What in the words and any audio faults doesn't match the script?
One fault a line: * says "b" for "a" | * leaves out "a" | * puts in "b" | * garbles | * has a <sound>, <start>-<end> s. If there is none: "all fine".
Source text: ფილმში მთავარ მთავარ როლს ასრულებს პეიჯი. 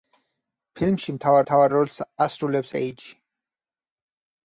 all fine